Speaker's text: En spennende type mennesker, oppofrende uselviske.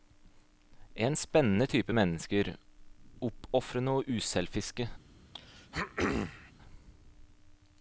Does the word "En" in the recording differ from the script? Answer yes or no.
no